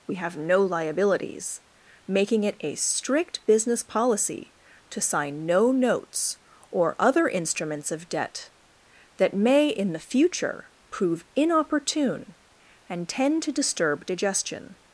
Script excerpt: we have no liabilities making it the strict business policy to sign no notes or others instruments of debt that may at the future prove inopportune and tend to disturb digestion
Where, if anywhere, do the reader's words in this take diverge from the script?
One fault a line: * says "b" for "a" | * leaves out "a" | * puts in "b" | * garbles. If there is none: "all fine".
* says "a" for "the"
* says "other" for "others"
* says "in" for "at"